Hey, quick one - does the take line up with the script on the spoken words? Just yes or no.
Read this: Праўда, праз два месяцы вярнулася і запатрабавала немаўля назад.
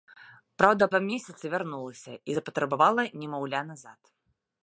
no